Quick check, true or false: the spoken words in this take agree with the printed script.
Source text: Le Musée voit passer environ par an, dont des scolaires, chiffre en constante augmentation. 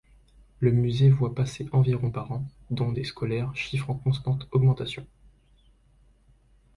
true